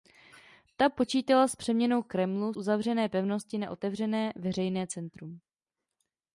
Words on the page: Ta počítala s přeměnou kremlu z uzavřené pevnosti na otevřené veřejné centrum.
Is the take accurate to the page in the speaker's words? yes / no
no